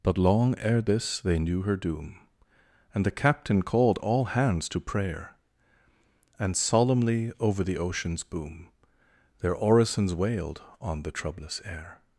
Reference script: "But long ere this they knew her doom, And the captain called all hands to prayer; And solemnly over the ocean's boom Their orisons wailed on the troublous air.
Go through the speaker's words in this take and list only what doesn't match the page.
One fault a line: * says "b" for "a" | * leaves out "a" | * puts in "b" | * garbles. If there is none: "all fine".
all fine